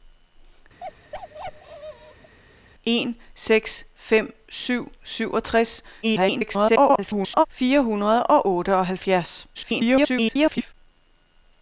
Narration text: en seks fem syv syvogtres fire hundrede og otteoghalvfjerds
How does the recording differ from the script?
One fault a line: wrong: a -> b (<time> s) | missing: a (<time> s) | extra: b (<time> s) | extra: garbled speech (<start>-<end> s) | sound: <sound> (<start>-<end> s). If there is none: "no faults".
sound: bark (0.8-2.4 s)
extra: garbled speech (6.0-7.5 s)
extra: garbled speech (9.5-10.7 s)